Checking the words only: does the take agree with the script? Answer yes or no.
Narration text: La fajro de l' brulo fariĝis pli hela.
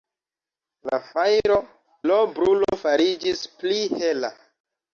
no